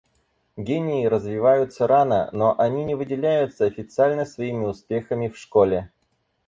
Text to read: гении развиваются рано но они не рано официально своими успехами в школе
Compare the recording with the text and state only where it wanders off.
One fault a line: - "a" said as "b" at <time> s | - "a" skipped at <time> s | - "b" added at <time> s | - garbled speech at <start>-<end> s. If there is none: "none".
- "рано" said as "выделяются" at 3.0 s